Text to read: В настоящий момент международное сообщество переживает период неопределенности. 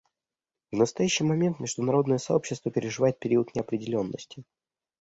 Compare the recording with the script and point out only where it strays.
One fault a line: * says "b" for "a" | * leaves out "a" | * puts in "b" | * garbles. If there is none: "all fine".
all fine